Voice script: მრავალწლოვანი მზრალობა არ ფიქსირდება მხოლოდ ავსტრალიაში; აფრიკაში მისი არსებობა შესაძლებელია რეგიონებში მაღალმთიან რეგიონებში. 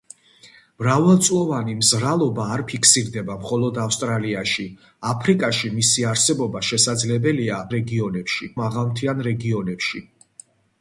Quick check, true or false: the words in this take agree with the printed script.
true